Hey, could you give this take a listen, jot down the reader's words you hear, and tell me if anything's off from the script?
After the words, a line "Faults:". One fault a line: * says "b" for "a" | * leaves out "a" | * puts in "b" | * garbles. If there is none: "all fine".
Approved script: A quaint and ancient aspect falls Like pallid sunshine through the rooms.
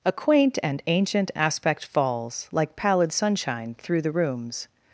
A quaint and ancient aspect falls Like pallid sunshine through the rooms.
Faults:
all fine